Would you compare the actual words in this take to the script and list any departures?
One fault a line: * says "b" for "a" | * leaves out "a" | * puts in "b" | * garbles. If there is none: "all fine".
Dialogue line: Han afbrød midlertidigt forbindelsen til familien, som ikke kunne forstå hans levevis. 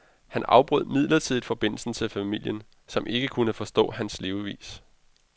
all fine